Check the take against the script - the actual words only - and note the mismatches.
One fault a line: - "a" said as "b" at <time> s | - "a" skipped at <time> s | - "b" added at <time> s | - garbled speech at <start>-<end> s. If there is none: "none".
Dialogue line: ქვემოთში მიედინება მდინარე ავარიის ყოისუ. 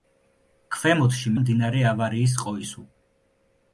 - "მიედინება" skipped at 1.3 s